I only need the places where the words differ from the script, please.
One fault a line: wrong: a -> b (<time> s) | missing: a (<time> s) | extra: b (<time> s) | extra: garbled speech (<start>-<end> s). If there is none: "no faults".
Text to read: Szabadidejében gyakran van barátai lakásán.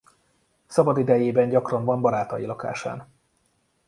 no faults